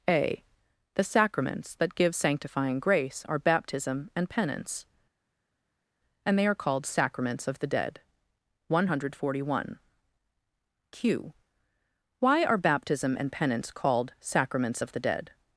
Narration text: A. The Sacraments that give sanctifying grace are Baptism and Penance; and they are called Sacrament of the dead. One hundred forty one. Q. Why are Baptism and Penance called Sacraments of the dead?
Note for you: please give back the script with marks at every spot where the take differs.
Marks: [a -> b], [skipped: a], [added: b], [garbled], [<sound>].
A. The Sacraments that give sanctifying grace are Baptism and Penance; and they are called [Sacrament -> Sacraments] of the dead. One hundred forty one. Q. Why are Baptism and Penance called Sacraments of the dead?